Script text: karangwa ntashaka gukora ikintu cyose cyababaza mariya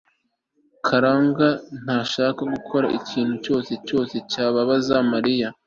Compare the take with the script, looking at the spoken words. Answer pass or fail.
fail